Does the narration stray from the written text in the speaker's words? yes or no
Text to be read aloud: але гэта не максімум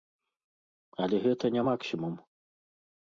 no